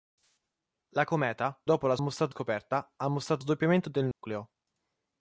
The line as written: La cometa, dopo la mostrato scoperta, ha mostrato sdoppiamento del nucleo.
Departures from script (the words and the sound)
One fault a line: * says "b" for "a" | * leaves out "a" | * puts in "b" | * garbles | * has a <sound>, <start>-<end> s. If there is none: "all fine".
* has a dropout, 4.1-4.2 s